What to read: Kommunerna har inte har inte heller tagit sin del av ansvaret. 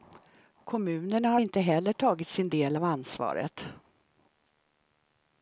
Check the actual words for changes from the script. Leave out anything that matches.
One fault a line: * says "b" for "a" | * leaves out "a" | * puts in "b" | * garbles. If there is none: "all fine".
* leaves out "har inte"